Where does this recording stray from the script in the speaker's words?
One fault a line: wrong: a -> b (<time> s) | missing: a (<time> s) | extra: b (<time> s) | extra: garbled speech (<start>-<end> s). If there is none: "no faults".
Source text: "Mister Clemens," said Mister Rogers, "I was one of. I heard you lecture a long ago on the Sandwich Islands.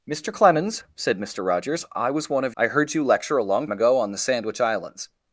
no faults